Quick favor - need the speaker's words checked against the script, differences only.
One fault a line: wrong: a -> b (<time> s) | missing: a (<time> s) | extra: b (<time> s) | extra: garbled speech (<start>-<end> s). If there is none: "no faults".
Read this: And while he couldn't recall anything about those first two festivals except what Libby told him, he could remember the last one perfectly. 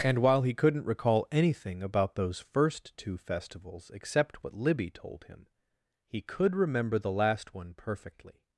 no faults